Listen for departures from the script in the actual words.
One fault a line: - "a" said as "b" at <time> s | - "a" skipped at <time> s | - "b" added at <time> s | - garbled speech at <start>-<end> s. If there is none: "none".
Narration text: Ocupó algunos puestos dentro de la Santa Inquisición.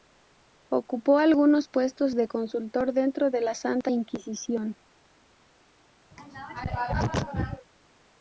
- "de consultor" added at 2.1 s